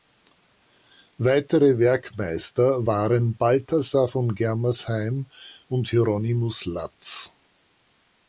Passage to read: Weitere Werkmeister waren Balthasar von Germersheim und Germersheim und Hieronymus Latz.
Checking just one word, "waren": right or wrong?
right